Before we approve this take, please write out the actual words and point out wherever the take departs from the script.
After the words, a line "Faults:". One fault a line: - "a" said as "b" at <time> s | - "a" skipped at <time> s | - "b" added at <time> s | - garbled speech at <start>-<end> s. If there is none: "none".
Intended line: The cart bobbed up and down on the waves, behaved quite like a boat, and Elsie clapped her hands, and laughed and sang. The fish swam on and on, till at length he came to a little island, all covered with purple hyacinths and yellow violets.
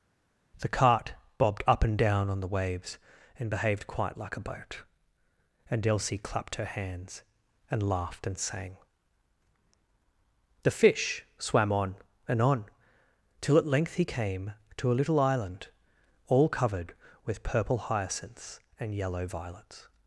The cart bobbed up and down on the waves, and behaved quite like a boat, and Elsie clapped her hands, and laughed and sang. The fish swam on and on, till at length he came to a little island, all covered with purple hyacinths and yellow violets.
Faults:
- "and" added at 3.4 s